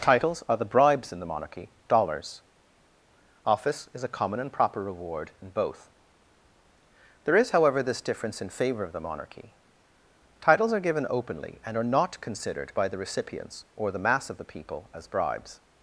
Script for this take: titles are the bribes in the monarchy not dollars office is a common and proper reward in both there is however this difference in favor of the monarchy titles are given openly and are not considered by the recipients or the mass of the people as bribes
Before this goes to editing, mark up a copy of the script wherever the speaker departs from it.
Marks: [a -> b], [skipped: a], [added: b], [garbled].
titles are the bribes in the monarchy [skipped: not] dollars office is a common and proper reward in both there is however this difference in favor of the monarchy titles are given openly and are not considered by the recipients or the mass of the people as bribes